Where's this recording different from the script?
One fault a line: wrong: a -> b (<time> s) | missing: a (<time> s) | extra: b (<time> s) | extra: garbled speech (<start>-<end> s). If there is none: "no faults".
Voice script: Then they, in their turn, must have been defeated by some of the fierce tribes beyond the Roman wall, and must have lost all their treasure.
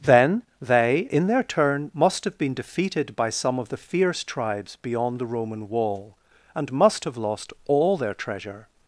no faults